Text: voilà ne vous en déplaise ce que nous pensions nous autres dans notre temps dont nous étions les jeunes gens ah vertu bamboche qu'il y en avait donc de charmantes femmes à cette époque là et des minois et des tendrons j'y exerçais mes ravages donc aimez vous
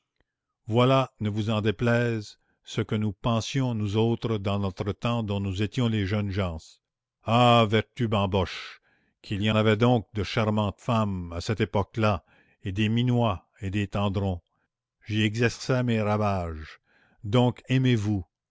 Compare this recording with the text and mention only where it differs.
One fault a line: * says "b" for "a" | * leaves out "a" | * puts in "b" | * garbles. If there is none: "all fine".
* leaves out "en"